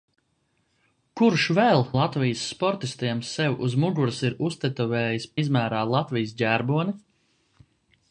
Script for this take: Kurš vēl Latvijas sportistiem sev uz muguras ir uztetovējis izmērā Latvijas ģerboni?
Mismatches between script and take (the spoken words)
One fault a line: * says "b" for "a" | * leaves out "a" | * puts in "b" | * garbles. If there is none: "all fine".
all fine